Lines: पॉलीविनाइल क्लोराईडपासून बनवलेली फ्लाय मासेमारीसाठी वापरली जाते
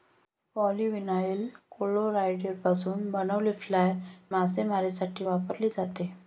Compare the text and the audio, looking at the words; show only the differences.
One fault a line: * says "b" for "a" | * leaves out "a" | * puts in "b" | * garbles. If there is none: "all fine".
all fine